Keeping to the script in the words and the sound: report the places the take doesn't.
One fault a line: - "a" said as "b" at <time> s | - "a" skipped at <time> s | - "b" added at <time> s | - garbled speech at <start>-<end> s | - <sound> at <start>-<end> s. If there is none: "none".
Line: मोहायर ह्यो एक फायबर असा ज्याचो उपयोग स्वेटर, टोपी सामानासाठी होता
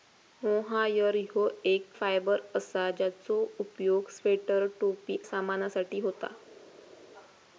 none